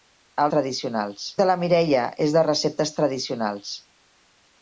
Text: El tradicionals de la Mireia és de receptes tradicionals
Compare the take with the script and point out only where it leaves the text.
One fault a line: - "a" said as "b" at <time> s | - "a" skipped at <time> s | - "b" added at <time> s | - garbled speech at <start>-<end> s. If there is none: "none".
none